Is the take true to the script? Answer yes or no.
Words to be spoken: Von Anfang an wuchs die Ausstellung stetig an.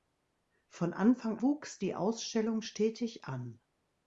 no